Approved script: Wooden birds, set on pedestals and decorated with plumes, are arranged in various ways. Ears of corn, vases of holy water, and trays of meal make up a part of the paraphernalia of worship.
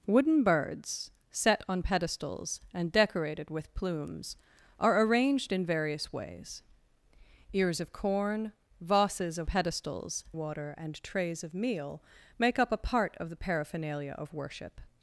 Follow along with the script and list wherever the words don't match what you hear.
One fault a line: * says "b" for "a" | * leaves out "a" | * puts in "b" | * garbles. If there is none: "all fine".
* says "pedestals" for "holy"